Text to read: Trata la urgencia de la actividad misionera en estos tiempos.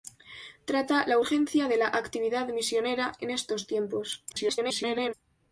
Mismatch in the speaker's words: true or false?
true